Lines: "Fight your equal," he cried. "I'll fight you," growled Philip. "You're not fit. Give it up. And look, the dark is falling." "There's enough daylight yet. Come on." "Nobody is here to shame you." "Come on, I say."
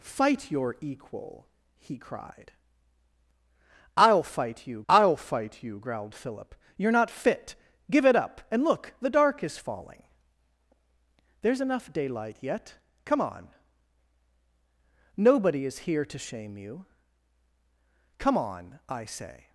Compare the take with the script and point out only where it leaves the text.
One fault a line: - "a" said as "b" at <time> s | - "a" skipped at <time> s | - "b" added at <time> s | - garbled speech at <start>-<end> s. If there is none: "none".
- "I'll fight you" added at 4.9 s